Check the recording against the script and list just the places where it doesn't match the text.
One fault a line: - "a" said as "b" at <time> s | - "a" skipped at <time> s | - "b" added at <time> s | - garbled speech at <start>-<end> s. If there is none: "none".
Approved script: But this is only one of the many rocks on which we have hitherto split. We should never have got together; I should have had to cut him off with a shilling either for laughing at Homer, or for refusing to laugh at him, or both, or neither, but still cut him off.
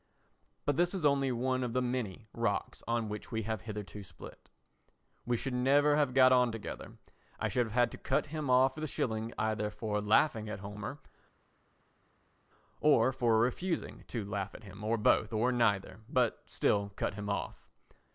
- "on" added at 6.3 s